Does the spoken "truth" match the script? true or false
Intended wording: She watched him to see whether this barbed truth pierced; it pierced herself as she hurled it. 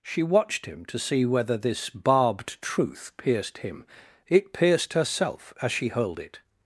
true